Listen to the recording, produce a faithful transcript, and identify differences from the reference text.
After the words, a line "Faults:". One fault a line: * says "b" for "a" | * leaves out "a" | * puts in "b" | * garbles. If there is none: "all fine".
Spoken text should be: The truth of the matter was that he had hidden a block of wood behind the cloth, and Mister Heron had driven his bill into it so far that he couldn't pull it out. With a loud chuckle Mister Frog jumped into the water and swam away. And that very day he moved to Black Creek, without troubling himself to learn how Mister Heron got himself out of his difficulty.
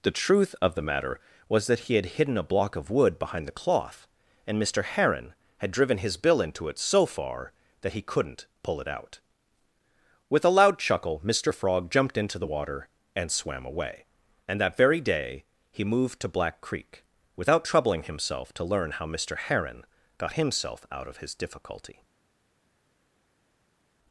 The truth of the matter was that he had hidden a block of wood behind the cloth, and Mister Heron had driven his bill into it so far that he couldn't pull it out. With a loud chuckle Mister Frog jumped into the water and swam away. And that very day he moved to Black Creek, without troubling himself to learn how Mister Heron got himself out of his difficulty.
Faults:
all fine